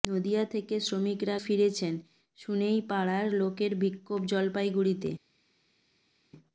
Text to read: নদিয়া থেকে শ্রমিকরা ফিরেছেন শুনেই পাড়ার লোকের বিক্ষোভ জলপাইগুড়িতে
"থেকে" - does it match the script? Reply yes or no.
yes